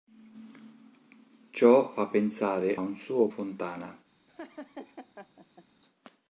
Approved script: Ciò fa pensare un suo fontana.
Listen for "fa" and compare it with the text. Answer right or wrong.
right